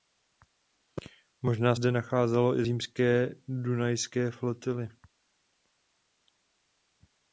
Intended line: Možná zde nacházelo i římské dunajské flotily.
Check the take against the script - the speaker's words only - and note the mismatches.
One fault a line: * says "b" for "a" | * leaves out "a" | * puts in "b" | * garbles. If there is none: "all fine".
all fine